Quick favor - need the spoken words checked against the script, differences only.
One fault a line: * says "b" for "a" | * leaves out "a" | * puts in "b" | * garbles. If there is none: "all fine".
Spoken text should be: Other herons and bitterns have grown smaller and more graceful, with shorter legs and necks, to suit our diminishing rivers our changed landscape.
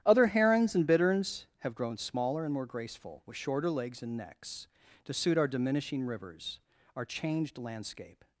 all fine